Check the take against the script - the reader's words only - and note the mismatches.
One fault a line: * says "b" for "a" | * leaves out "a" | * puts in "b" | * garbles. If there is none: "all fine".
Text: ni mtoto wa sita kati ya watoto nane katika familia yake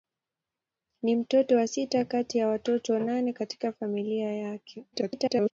* garbles